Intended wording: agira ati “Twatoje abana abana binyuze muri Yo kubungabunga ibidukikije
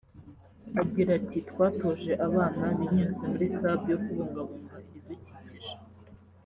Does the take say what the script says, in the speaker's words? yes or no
no